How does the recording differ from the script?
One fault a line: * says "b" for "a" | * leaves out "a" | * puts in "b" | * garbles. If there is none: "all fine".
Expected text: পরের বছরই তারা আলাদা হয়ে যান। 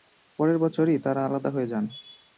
all fine